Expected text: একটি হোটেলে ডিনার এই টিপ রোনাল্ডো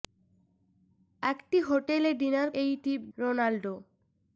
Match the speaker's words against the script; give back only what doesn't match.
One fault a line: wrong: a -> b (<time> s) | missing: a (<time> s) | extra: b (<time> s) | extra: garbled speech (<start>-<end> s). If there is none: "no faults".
no faults